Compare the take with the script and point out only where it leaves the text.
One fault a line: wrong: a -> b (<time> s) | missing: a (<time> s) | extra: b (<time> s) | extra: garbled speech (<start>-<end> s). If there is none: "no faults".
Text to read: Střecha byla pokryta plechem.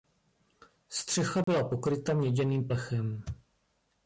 extra: měděným (2.1 s)